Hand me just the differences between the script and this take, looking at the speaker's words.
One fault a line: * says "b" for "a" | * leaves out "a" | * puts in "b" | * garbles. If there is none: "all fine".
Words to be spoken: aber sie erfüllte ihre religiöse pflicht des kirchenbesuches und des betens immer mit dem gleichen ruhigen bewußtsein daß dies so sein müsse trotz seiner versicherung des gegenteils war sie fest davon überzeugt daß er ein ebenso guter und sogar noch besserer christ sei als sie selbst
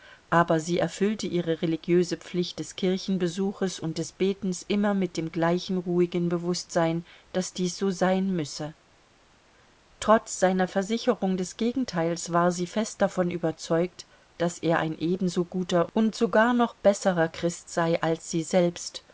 all fine